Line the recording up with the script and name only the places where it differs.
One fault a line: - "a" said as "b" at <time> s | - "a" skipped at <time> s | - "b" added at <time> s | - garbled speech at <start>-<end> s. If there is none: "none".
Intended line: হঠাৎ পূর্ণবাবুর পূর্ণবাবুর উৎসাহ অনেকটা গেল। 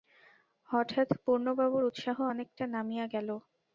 - "পূর্ণবাবুর" skipped at 1.8 s
- "নামিয়া" added at 2.8 s